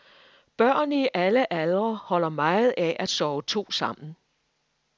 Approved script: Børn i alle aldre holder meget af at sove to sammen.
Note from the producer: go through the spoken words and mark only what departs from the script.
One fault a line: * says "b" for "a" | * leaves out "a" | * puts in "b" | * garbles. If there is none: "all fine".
all fine